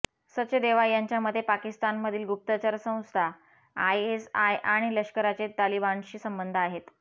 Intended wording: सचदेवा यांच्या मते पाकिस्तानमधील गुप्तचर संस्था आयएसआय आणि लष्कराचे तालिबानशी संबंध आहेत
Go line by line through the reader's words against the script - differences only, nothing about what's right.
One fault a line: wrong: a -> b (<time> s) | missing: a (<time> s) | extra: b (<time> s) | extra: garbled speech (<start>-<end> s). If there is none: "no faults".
no faults